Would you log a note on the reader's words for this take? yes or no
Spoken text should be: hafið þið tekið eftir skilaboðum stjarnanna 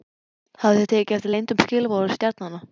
yes